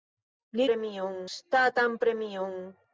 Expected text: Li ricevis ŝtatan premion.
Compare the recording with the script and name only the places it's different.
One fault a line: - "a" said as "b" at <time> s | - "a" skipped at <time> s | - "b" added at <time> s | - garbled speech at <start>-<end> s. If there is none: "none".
- "ricevis" said as "premion" at 0.7 s